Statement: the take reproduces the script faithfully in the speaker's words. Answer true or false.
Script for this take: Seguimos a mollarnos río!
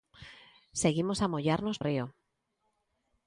true